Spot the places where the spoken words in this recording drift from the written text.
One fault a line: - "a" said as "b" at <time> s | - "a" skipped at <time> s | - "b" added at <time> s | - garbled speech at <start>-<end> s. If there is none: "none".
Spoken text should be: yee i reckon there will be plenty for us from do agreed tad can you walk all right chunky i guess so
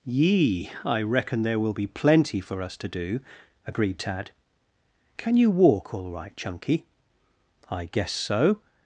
- "from" said as "to" at 2.8 s